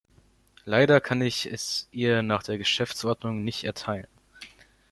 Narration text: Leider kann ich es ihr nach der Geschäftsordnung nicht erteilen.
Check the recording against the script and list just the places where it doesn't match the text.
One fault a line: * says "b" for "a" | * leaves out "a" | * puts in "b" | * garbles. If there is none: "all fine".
all fine